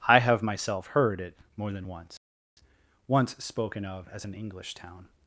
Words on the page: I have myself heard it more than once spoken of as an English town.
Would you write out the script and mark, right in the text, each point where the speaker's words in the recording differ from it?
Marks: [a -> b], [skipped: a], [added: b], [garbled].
I have myself heard it more than once [added: once] spoken of as an English town.